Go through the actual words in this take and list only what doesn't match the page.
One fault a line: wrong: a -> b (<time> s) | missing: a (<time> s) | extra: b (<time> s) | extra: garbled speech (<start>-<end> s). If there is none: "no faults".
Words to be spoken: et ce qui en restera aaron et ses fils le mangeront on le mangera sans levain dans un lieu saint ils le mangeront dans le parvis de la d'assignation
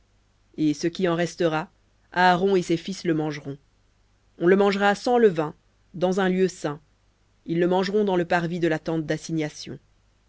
extra: tente (8.8 s)